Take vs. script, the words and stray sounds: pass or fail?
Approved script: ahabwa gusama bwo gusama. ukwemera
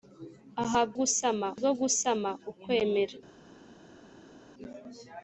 pass